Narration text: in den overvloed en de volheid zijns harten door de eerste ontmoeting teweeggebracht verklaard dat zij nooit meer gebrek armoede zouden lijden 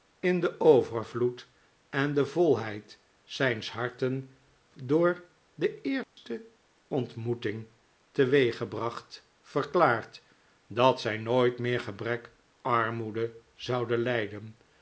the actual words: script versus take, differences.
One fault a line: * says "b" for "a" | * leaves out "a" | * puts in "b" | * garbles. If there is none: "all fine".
all fine